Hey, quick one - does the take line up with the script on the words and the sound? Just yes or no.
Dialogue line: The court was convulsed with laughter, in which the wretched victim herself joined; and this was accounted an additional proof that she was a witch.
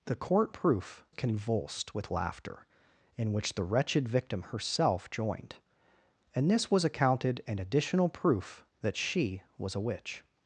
no